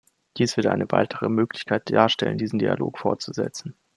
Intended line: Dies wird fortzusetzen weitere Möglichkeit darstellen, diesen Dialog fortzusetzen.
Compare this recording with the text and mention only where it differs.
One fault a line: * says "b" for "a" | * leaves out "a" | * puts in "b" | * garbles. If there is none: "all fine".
* says "eine" for "fortzusetzen"